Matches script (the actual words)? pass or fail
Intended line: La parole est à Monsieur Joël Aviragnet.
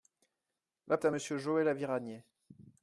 fail